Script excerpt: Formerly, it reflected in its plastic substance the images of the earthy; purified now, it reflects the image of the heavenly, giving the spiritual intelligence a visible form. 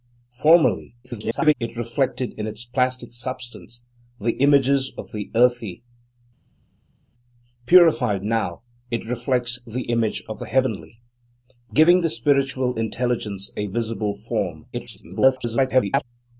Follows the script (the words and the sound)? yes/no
no